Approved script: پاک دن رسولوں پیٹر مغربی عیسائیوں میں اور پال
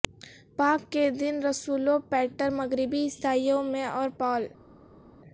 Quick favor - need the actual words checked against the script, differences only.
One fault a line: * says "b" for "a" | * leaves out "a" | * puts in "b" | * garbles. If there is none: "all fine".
* puts in "کے"